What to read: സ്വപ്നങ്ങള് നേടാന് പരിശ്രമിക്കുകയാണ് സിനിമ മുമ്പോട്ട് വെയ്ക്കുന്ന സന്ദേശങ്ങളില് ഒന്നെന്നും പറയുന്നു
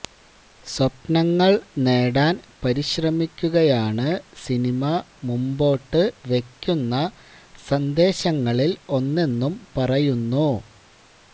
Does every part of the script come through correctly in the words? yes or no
yes